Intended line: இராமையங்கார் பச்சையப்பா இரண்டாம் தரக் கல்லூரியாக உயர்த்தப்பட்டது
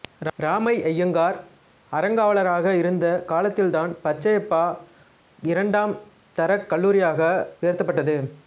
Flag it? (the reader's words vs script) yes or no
yes